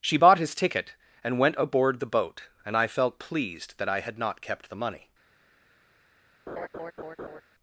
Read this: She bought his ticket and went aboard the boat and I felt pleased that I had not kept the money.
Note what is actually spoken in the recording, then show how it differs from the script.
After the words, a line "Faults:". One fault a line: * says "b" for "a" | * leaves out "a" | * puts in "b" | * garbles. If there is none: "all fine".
She bought his ticket and went aboard the boat and I felt pleased that I had not kept the money.
Faults:
all fine